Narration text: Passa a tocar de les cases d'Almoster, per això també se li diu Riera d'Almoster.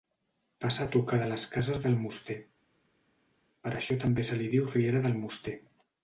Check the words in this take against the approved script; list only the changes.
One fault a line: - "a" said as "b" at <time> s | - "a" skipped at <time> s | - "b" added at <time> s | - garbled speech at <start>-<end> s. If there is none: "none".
none